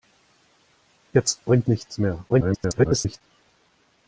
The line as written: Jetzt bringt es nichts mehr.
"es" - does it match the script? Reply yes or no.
no